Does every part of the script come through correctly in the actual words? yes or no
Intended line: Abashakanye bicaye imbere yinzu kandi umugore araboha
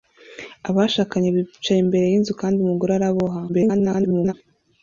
no